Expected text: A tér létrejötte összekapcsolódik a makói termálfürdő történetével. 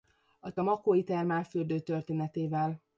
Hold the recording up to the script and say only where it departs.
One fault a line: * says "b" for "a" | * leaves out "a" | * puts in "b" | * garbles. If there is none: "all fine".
* leaves out "tér létrejötte összekapcsolódik"